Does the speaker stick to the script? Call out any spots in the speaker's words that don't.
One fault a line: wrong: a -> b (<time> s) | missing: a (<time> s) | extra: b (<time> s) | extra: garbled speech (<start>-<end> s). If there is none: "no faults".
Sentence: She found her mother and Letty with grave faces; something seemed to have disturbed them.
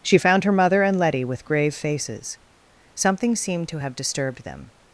no faults